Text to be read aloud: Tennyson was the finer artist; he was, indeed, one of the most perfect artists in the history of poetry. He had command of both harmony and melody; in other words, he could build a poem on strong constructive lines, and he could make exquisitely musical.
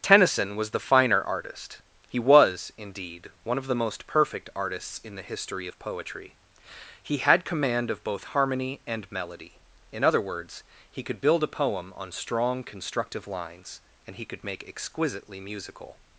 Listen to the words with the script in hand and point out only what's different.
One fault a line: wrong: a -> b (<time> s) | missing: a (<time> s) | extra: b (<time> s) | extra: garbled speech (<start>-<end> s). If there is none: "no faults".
no faults